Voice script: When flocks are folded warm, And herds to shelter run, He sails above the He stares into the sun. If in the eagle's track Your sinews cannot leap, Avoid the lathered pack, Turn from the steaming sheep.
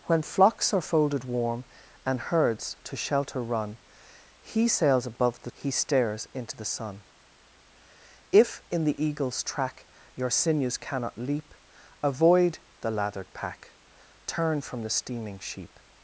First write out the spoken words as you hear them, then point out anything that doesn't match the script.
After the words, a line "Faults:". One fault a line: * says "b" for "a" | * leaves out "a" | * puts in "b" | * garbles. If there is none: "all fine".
When flocks are folded warm, And herds to shelter run, He sails above the He stares into the sun. If in the eagle's track Your sinews cannot leap, Avoid the lathered pack, Turn from the steaming sheep.
Faults:
all fine